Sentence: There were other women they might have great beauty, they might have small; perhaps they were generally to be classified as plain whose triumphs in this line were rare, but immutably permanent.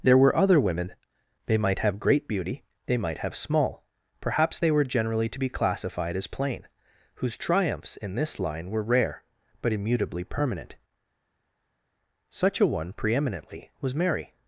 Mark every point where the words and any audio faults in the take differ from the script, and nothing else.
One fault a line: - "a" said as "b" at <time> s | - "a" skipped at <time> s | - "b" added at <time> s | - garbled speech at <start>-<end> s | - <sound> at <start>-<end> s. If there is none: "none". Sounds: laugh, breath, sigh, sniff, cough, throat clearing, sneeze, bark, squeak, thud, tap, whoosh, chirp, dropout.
- "Such a one preeminently was Mary" added at 12.3 s